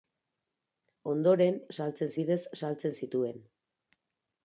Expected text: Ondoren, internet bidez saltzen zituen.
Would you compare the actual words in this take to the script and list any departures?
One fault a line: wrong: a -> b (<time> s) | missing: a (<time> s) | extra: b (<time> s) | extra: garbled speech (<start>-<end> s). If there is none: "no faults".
wrong: internet -> saltzen (1.8 s)